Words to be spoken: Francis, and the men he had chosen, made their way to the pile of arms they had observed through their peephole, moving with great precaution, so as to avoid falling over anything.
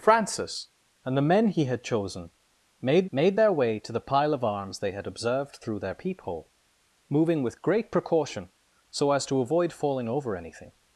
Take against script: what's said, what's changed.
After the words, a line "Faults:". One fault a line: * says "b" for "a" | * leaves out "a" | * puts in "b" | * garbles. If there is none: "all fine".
Francis, and the men he had chosen, made made their way to the pile of arms they had observed through their peephole, moving with great precaution, so as to avoid falling over anything.
Faults:
* puts in "made"